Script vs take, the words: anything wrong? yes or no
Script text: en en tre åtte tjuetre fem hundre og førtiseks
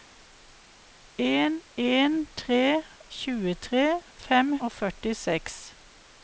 yes